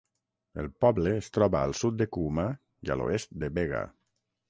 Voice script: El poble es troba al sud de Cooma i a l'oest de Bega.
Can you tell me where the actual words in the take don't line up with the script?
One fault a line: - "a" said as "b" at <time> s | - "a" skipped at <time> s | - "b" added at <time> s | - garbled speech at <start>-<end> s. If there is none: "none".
none